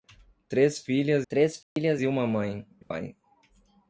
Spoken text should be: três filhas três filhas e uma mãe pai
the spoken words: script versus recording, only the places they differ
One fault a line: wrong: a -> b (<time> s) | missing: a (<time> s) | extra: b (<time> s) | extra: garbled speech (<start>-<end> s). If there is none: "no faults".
no faults